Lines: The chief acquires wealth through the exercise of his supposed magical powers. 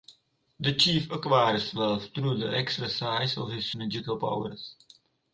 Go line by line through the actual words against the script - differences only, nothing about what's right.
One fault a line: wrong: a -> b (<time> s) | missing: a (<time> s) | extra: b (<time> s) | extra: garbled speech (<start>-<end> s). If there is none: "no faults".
missing: supposed (3.7 s)